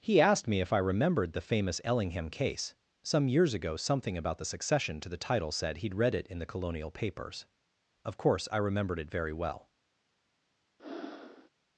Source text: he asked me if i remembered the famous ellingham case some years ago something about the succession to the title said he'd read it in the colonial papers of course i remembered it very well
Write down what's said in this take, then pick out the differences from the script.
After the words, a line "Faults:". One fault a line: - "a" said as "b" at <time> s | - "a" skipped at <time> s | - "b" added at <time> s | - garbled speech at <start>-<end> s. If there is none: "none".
he asked me if i remembered the famous ellingham case some years ago something about the succession to the title said he'd read it in the colonial papers of course i remembered it very well
Faults:
none